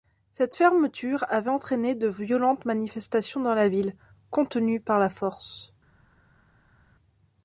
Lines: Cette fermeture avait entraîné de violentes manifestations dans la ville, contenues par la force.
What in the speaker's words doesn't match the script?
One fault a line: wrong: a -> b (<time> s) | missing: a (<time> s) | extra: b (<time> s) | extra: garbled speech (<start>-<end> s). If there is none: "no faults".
no faults